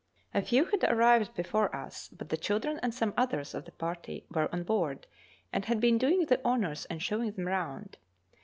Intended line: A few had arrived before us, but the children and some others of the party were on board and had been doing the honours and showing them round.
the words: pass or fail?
pass